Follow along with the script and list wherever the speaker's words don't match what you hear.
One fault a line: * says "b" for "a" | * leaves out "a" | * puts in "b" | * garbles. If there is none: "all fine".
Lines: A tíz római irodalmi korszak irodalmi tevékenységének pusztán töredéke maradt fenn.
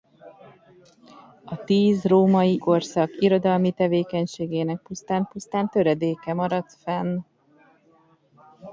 * leaves out "irodalmi"
* puts in "pusztán"